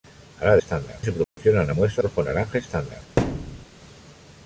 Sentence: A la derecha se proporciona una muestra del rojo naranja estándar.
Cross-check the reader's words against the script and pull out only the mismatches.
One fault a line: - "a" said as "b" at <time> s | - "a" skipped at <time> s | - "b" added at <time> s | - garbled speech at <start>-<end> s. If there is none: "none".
- "derecha" said as "estándar" at 0.6 s
- "del" skipped at 2.0 s